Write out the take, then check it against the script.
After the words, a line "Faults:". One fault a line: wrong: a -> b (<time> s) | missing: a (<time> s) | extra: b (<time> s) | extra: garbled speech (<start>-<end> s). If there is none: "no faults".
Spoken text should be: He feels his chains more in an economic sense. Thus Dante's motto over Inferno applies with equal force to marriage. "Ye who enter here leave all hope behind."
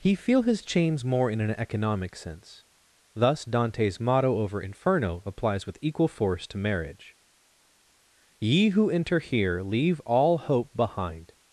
He feel his chains more in an economic sense. Thus Dante's motto over Inferno applies with equal force to marriage. "Ye who enter here leave all hope behind."
Faults:
wrong: feels -> feel (0.1 s)